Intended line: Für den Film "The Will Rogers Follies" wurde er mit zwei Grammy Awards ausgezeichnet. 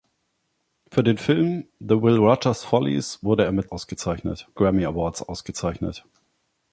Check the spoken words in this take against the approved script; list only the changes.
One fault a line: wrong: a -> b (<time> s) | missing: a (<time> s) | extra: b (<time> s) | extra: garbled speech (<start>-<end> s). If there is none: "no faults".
wrong: zwei -> ausgezeichnet (3.6 s)